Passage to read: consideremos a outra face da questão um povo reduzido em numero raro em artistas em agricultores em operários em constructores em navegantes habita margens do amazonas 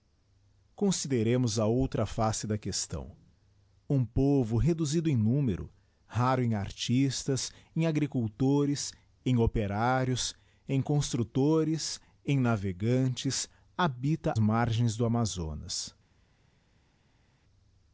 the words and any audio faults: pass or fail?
pass